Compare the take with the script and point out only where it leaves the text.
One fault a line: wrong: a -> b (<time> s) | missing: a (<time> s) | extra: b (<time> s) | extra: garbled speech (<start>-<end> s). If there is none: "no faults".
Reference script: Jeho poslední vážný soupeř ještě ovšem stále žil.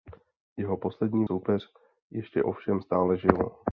missing: vážný (1.2 s)